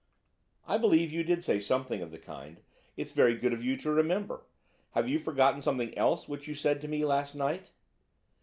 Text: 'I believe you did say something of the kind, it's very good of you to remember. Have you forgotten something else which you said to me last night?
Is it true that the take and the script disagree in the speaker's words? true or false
false